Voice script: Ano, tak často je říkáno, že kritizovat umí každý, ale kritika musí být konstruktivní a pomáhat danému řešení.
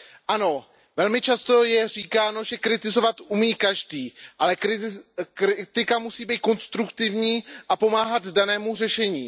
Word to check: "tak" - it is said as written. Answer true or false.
false